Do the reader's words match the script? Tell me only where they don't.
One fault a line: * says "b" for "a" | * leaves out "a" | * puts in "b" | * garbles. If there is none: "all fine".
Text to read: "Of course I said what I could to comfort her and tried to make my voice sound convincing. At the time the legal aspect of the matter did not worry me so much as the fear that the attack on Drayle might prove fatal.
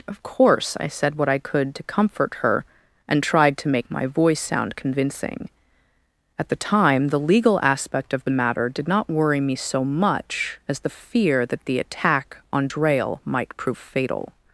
all fine